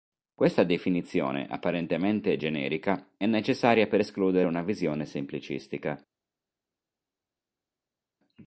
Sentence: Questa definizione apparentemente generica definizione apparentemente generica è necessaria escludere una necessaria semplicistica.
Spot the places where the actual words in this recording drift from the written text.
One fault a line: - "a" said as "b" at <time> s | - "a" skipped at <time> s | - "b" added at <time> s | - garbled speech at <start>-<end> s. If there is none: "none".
- "definizione apparentemente generica" skipped at 3.1 s
- "per" added at 3.9 s
- "necessaria" said as "visione" at 4.6 s